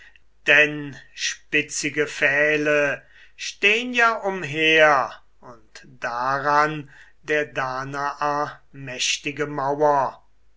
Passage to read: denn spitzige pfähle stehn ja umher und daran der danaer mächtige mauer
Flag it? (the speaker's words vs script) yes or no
no